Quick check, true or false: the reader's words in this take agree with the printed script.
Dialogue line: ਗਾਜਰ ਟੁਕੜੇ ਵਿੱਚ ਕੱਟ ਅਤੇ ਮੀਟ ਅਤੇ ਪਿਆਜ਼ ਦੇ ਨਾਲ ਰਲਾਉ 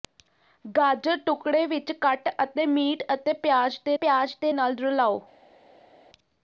false